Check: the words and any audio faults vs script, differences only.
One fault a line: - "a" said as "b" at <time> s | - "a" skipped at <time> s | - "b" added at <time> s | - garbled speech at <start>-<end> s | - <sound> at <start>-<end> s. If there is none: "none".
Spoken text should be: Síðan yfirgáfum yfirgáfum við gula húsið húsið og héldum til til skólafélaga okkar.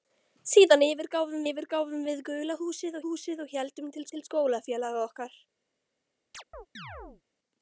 - chirp at 6.3-7.2 s